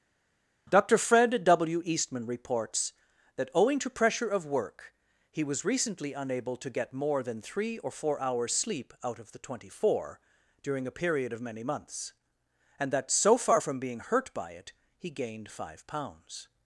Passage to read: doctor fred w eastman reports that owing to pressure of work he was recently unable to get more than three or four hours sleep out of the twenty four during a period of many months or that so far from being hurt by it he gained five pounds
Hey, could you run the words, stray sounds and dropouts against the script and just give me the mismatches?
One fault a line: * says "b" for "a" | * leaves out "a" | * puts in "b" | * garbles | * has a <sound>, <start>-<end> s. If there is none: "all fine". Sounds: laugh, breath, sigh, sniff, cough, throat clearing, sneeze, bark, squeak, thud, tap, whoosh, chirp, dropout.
* says "and" for "or"